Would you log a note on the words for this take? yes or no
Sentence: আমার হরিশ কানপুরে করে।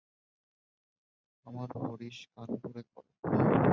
no